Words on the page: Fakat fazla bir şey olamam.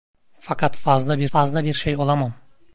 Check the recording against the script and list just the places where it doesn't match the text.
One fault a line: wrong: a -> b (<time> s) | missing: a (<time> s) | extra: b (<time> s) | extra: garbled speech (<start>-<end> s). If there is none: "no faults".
extra: fazla bir (1.3 s)